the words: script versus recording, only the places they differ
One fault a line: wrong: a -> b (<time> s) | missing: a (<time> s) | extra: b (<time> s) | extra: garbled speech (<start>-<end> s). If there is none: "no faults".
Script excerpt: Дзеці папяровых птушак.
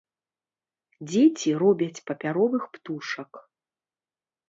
extra: робяць (1.6 s)